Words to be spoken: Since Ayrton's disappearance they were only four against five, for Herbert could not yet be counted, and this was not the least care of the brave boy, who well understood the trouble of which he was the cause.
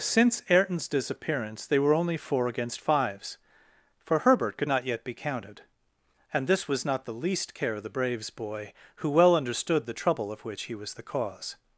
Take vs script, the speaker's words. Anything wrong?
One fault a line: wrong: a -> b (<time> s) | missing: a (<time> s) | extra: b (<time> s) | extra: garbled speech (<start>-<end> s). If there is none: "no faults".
wrong: five -> fives (2.8 s)
wrong: brave -> braves (7.9 s)